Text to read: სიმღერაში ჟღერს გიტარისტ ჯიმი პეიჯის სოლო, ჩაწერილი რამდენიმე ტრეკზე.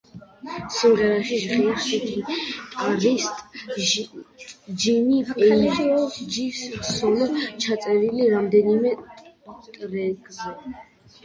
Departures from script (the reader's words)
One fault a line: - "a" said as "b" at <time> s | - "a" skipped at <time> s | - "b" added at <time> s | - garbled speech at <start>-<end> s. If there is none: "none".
none